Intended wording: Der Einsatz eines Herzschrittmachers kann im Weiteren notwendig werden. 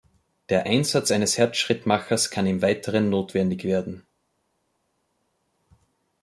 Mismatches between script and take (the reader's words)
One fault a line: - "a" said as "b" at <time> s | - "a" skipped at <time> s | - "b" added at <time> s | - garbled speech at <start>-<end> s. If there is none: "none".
none